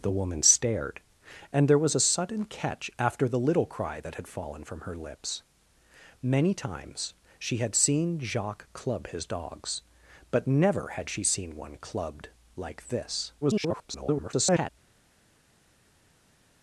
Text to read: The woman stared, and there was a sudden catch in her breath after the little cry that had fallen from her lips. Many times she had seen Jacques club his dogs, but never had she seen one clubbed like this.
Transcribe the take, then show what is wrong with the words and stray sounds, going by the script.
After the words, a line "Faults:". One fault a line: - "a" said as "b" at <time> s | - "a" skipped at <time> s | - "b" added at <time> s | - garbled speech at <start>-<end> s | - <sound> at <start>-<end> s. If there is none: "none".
The woman stared, and there was a sudden catch after the little cry that had fallen from her lips. Many times she had seen Jacques club his dogs, but never had she seen one clubbed like this. [garbled]
Faults:
- "in her breath" skipped at 2.9 s
- garbled speech at 13.4-14.7 s